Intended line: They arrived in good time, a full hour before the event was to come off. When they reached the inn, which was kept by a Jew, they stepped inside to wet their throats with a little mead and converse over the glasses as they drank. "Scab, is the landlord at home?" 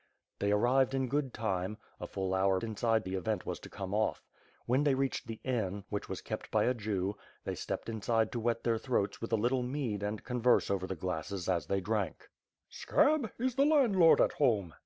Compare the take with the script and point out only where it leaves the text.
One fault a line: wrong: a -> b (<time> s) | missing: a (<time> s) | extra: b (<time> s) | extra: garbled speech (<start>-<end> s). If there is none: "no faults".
wrong: before -> inside (2.6 s)